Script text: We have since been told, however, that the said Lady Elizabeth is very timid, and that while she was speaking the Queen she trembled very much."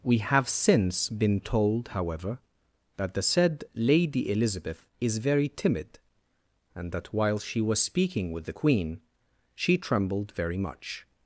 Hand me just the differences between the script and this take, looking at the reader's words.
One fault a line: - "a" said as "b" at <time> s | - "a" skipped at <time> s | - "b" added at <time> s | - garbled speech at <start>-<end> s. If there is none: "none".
- "with" added at 8.3 s